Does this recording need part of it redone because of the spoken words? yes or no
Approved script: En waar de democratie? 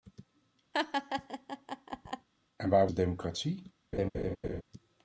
no